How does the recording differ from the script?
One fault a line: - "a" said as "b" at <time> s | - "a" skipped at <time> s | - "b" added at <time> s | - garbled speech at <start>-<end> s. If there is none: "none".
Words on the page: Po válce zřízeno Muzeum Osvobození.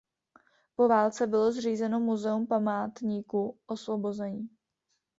- "bylo" added at 1.3 s
- "Památníku" added at 2.5 s